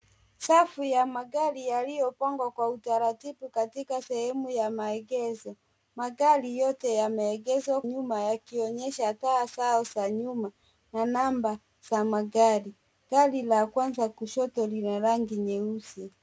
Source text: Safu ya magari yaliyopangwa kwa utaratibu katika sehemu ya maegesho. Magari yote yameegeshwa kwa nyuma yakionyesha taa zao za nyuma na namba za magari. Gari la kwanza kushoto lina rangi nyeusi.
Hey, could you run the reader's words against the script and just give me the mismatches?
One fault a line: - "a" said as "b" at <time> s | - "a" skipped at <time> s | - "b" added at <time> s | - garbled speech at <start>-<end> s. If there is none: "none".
- "kwa" skipped at 7.8 s